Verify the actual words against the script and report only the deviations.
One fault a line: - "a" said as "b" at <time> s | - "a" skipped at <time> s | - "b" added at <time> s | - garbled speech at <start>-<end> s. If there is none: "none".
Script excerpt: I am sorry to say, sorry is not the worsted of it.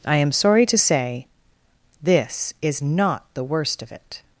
- "sorry" said as "this" at 2.0 s
- "worsted" said as "worst" at 3.4 s